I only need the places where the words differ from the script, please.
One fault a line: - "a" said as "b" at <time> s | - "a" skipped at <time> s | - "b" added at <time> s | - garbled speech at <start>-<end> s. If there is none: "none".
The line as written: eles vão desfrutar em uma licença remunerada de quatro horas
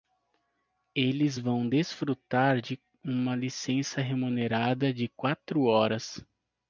- "em" said as "de" at 2.6 s